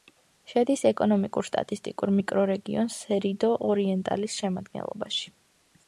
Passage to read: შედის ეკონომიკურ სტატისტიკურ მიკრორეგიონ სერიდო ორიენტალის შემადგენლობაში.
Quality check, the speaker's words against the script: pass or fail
pass